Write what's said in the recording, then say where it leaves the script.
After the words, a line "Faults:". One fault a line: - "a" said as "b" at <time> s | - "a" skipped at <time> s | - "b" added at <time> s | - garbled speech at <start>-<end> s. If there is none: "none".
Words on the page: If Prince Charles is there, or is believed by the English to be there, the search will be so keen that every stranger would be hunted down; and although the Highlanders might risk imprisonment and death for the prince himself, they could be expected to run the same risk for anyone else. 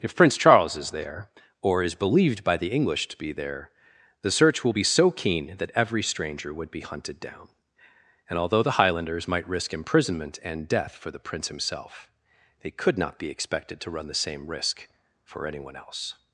If Prince Charles is there, or is believed by the English to be there, the search will be so keen that every stranger would be hunted down; and although the Highlanders might risk imprisonment and death for the prince himself, they could not be expected to run the same risk for anyone else.
Faults:
- "not" added at 13.0 s